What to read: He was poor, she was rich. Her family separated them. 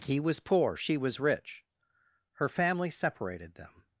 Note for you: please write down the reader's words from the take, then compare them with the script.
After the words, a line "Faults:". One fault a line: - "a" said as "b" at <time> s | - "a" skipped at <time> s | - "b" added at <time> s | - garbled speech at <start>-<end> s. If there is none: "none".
He was poor, she was rich. Her family separated them.
Faults:
none